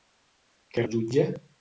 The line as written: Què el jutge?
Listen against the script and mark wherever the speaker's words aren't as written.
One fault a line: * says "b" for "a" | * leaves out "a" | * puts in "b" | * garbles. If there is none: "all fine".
all fine